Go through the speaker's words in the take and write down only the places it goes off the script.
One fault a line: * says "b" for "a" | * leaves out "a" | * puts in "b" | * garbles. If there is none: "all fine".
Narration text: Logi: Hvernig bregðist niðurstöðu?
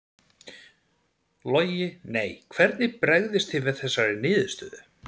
* puts in "Nei"
* puts in "þið við þessari"